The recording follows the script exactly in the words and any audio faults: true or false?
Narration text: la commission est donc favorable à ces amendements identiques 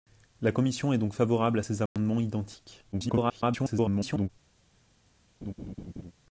false